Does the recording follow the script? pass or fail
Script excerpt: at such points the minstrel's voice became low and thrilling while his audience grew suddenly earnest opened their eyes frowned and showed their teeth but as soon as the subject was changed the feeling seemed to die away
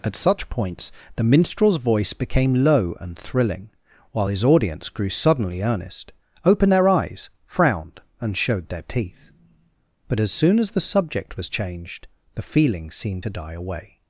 pass